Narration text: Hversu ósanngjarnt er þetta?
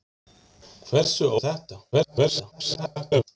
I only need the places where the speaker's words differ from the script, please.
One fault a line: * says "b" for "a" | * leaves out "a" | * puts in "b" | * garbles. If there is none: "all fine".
* leaves out "ósanngjarnt"
* garbles